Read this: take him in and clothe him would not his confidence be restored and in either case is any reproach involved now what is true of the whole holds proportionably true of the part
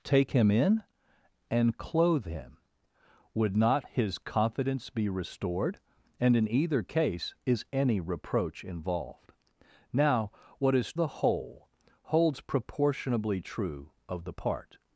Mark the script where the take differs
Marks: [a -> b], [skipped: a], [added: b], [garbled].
take him in and clothe him would not his confidence be restored and in either case is any reproach involved now what is [skipped: true of] the whole holds proportionably true of the part